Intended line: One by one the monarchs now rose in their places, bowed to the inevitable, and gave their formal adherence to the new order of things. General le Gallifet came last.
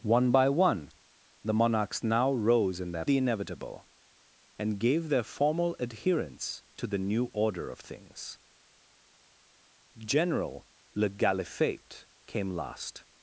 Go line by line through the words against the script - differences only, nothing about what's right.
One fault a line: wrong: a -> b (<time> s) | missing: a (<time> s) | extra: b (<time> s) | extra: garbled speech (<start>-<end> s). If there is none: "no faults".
missing: places bowed to (3.0 s)